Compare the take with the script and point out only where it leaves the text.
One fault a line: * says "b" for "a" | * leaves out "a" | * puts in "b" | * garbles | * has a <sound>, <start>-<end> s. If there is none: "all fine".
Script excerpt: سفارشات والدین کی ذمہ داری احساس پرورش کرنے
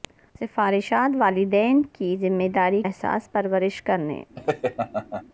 * has a laugh, 4.4-5.2 s